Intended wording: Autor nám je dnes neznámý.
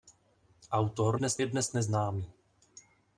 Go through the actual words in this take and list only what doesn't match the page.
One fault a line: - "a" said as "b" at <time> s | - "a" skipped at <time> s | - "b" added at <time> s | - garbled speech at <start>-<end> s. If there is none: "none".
- "nám" said as "dnes" at 1.1 s